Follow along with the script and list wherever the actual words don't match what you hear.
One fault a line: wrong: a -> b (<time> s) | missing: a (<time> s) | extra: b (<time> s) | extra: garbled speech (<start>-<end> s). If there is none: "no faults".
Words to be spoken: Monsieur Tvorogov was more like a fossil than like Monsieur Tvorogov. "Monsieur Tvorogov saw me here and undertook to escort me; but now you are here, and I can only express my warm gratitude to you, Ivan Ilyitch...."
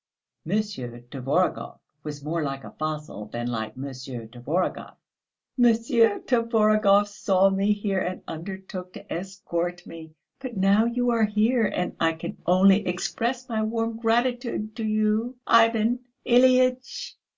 no faults